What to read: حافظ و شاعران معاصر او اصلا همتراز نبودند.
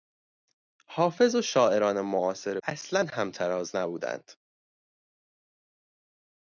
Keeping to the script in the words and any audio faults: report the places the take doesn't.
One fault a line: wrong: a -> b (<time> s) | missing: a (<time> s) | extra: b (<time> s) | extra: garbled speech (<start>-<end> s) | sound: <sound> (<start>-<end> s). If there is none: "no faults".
missing: او (2.6 s)